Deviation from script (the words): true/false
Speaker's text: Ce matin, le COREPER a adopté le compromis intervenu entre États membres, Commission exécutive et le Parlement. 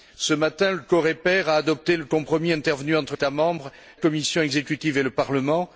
false